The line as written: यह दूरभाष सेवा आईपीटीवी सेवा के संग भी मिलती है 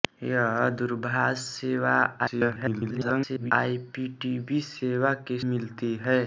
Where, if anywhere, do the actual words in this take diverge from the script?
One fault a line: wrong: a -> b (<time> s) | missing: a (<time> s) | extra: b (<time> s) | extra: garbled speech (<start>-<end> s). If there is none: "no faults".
extra: garbled speech (2.2-3.5 s)
missing: संग भी (5.4 s)